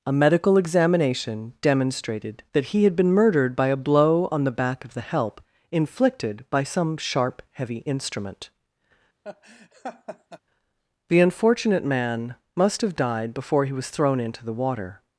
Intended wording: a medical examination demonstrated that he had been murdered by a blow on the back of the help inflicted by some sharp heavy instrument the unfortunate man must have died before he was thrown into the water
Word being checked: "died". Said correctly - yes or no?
yes